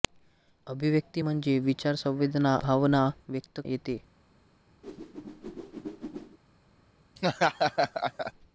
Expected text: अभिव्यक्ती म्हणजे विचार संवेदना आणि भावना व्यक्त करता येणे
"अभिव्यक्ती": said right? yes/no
yes